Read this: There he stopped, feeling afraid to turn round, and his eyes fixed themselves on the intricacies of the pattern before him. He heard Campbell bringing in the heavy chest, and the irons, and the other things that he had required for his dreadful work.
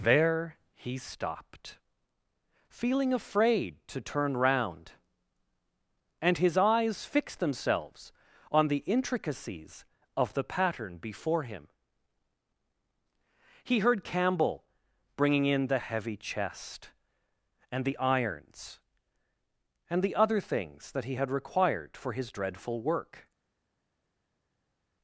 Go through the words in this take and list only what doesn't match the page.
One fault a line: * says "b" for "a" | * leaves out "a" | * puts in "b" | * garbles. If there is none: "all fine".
all fine